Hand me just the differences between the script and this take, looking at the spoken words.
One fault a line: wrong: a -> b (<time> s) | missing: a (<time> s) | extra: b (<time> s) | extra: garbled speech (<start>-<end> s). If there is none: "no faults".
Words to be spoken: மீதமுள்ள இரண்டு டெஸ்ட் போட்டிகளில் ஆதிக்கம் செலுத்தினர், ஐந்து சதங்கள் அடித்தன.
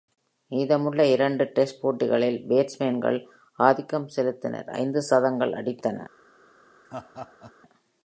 extra: பேட்ஸ்மேன்கள் (2.5 s)